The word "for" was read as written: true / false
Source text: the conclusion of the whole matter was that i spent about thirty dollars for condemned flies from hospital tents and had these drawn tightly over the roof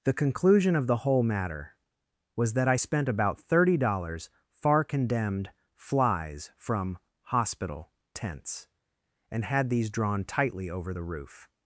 false